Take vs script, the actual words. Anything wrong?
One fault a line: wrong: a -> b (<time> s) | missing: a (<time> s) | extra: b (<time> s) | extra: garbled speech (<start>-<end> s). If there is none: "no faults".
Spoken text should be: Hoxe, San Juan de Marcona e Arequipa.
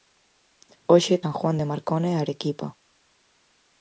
no faults